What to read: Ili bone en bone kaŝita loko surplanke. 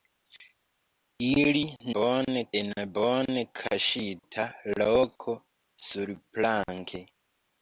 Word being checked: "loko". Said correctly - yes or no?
yes